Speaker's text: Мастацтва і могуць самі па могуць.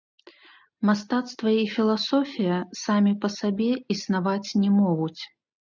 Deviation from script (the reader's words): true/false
true